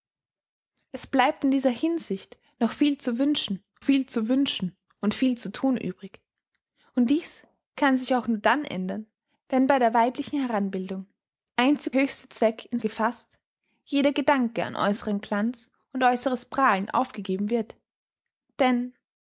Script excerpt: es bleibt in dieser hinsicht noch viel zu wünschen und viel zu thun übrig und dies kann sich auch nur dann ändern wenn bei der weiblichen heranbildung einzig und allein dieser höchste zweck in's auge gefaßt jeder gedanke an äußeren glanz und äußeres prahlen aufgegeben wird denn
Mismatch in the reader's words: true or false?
true